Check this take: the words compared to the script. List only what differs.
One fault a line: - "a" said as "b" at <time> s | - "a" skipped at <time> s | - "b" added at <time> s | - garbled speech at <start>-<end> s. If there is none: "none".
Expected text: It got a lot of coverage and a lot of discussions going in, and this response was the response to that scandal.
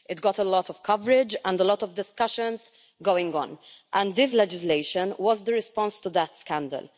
- "in" said as "on" at 3.4 s
- "response" said as "legislation" at 4.3 s